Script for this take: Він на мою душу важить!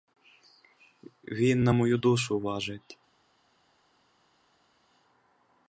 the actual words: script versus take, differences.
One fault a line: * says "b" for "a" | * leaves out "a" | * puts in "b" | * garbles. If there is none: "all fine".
all fine